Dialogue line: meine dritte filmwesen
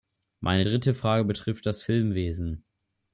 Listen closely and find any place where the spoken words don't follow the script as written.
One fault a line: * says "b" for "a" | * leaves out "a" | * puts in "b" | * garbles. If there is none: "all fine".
* puts in "frage betrifft das"